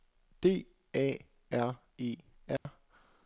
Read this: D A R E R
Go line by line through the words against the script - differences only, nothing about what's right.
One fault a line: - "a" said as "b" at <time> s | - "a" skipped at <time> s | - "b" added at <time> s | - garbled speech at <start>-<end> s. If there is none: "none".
none